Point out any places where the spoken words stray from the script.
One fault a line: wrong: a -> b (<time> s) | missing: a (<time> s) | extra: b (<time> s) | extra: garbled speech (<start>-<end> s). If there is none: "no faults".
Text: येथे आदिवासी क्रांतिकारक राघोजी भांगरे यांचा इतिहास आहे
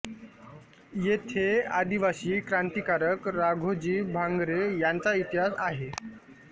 no faults